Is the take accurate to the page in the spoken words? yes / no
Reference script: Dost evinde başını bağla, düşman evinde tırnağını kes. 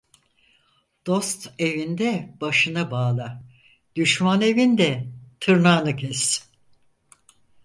yes